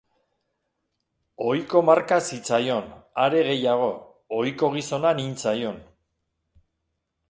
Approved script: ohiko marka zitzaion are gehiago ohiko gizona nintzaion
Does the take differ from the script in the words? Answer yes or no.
no